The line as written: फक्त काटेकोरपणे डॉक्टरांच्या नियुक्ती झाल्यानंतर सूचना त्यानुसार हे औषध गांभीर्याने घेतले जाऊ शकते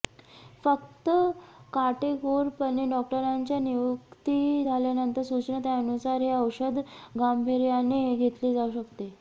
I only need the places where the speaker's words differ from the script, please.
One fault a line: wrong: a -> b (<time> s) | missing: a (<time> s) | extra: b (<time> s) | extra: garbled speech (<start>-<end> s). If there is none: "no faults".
no faults